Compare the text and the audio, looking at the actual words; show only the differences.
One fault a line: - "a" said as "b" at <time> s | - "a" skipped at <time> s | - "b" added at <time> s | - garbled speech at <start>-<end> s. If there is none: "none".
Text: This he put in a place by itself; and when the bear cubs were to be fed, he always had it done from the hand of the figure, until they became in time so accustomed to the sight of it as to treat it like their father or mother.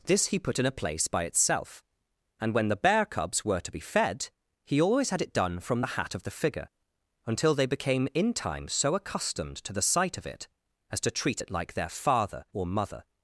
- "hand" said as "hat" at 6.0 s